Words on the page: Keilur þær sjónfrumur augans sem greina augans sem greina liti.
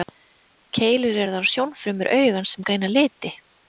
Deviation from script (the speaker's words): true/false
true